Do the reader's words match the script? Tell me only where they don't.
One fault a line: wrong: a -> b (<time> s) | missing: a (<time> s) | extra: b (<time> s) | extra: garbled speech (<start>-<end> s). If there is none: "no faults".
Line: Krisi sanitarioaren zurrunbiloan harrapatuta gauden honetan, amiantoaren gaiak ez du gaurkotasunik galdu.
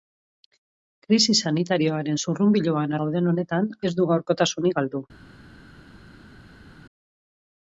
missing: harrapatuta (3.0 s)
missing: amiantoaren gaiak (3.7 s)